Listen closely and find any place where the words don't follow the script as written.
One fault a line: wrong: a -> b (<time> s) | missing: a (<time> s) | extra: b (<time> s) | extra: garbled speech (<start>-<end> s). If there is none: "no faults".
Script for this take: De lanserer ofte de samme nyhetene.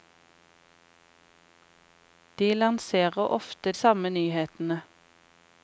missing: de (3.7 s)